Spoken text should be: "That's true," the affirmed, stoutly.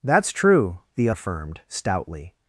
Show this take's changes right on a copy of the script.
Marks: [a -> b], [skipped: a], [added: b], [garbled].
"That's true," the affirmed, stoutly.